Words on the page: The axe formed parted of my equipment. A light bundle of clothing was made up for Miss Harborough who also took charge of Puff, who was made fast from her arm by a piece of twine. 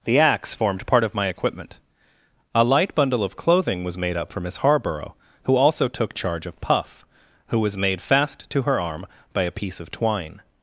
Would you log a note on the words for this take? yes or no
yes